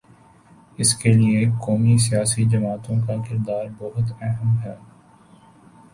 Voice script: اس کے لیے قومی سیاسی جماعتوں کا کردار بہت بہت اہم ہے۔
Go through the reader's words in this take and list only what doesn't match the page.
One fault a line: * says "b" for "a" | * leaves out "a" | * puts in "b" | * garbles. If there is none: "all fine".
* leaves out "بہت"